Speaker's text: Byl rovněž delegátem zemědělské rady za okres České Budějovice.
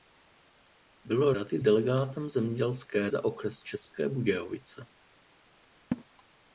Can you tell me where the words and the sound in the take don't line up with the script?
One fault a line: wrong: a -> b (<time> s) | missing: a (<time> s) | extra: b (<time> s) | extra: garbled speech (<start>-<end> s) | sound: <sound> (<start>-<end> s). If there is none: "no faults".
wrong: rovněž -> rady (1.3 s)
missing: rady (3.1 s)
sound: laugh (5.9-6.0 s)